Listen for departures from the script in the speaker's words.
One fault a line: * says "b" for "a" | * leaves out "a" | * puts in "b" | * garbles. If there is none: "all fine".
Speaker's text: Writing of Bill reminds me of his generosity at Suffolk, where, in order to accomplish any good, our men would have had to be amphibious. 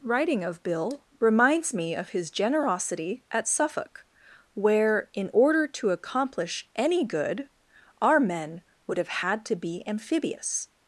all fine